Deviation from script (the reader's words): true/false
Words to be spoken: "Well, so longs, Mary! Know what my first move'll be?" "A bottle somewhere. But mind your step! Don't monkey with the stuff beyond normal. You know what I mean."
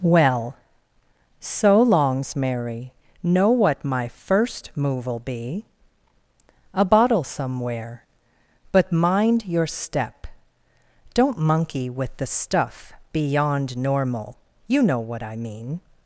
false